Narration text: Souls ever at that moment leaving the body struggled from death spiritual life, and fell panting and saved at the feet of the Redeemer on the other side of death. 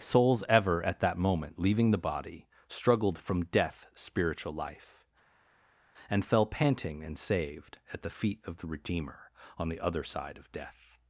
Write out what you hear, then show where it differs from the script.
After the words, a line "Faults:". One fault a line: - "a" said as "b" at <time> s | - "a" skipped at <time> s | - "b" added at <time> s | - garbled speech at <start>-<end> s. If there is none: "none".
Souls ever at that moment leaving the body struggled from death spiritual life, and fell panting and saved at the feet of the Redeemer on the other side of death.
Faults:
none